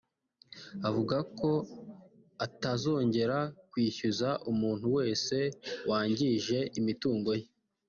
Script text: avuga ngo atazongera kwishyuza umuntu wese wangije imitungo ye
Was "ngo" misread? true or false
true